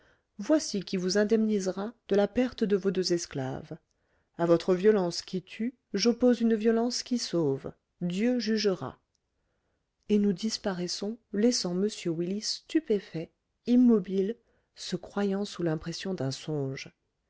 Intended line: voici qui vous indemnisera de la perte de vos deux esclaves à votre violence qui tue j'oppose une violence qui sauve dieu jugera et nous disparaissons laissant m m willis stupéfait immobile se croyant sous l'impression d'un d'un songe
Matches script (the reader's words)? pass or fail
fail